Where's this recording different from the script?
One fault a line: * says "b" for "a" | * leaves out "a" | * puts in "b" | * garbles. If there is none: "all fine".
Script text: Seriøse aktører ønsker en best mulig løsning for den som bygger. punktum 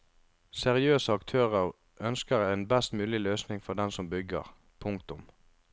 all fine